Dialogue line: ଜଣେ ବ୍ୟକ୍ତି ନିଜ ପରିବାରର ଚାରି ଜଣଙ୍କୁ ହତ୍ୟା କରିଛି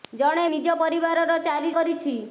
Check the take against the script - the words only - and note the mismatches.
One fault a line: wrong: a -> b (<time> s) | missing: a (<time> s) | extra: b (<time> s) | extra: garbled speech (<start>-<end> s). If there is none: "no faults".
missing: ବ୍ୟକ୍ତି (0.5 s)
missing: ଜଣଙ୍କୁ ହତ୍ୟା (1.8 s)